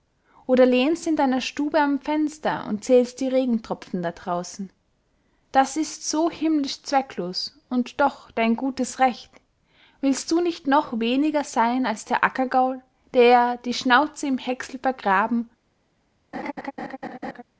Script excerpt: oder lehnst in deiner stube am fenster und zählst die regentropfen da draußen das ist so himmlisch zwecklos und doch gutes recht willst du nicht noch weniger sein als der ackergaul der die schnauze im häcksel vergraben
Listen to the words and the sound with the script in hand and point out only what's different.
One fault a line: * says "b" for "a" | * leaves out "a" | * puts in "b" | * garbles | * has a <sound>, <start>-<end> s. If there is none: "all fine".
* puts in "dein"
* has a laugh, 16.3-17.4 s